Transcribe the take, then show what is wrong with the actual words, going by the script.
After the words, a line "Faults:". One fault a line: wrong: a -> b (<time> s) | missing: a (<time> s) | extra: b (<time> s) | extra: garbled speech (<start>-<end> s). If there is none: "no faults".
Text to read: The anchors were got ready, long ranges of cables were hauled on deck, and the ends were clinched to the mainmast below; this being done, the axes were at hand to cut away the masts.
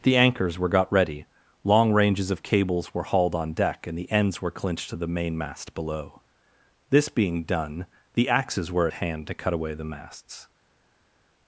The anchors were got ready, long ranges of cables were hauled on deck, and the ends were clinched to the mainmast below; this being done, the axes were at hand to cut away the masts.
Faults:
no faults